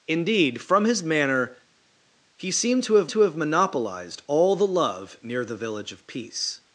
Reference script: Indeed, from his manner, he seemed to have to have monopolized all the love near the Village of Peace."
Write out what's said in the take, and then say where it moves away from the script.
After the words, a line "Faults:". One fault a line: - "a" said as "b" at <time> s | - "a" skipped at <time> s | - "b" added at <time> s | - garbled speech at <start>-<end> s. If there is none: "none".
Indeed, from his manner, he seemed to have to have monopolized all the love near the Village of Peace."
Faults:
none